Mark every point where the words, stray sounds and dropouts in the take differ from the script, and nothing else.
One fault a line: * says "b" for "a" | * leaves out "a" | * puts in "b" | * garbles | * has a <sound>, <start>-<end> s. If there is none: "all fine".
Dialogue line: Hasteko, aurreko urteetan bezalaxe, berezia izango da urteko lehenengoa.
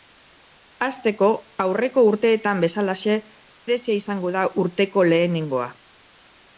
all fine